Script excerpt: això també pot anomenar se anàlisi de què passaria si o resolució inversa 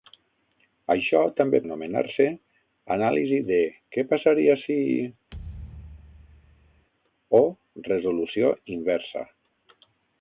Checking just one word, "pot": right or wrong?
wrong